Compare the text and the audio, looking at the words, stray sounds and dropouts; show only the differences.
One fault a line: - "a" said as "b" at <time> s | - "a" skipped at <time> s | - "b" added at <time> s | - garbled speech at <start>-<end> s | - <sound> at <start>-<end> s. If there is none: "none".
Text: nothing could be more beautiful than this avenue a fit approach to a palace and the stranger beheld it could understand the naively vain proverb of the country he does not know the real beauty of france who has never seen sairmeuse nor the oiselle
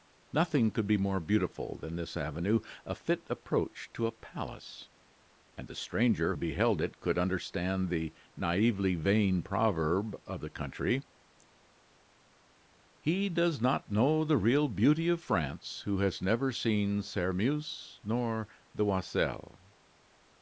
none